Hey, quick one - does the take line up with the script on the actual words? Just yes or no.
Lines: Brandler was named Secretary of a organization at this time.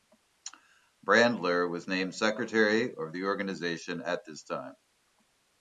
no